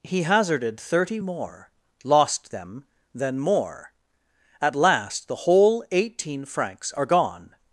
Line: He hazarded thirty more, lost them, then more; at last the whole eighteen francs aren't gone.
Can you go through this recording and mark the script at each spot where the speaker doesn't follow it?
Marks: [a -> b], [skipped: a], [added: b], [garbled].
He hazarded thirty more, lost them, then more; at last the whole eighteen francs [aren't -> are] gone.